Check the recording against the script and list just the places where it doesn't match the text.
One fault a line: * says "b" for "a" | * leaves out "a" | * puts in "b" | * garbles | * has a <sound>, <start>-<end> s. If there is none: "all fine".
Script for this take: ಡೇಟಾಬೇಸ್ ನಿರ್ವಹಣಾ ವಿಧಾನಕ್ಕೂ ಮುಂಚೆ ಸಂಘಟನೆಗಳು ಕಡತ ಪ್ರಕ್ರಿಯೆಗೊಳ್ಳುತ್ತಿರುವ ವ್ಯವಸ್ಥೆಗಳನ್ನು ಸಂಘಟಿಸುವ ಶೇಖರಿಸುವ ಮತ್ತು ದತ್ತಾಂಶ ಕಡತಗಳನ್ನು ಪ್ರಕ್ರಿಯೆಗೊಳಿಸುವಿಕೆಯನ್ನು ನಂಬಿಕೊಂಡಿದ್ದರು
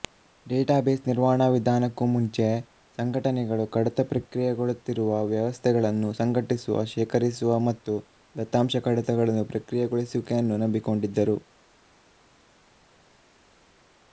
all fine